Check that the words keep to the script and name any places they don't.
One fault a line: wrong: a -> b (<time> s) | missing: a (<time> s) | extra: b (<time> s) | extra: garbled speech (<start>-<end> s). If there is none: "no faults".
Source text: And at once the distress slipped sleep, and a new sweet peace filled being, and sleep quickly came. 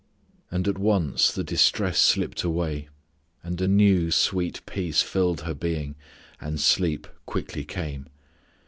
wrong: sleep -> away (2.4 s)
extra: her (5.4 s)